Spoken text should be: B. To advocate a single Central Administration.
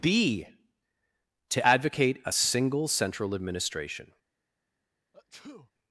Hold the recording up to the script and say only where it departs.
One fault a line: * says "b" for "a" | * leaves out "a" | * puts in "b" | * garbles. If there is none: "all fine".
all fine